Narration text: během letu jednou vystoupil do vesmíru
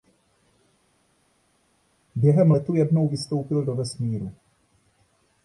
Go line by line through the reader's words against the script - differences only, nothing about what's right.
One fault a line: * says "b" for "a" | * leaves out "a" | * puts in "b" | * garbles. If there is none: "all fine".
all fine